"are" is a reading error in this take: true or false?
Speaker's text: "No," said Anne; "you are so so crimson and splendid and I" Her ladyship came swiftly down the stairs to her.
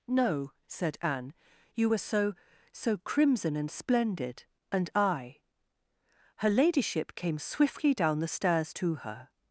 true